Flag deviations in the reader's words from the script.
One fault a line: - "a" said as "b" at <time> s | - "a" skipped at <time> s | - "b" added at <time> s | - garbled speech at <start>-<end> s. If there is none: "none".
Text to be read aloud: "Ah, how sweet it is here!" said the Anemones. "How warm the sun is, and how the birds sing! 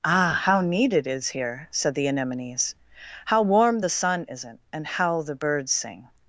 - "sweet" said as "neat" at 0.6 s
- "is" said as "isn't" at 4.3 s